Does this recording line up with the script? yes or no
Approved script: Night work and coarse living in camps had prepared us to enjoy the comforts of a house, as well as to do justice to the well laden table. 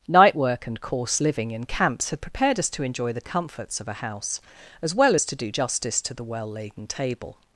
yes